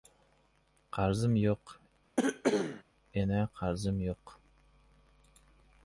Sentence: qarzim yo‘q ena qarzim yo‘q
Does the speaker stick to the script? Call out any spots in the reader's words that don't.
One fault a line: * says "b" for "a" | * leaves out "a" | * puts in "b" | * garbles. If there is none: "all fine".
all fine